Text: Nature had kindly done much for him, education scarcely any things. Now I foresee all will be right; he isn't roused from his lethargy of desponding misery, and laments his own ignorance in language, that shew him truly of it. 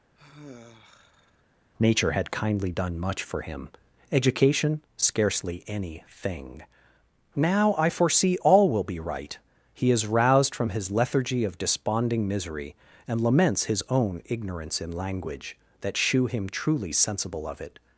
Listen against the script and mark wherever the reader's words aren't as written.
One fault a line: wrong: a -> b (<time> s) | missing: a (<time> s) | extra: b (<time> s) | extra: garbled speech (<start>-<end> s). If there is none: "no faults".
wrong: things -> thing (6.1 s)
wrong: isn't -> is (9.9 s)
extra: sensible (16.9 s)